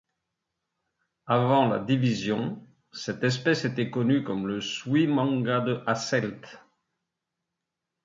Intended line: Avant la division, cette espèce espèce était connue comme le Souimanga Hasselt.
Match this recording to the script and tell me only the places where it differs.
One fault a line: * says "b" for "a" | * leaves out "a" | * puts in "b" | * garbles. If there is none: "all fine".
* leaves out "espèce"
* puts in "de"